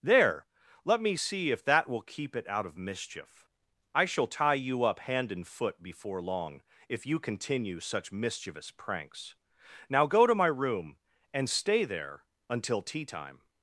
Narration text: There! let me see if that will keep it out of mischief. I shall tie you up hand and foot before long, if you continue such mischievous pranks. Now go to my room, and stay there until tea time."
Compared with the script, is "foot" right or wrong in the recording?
right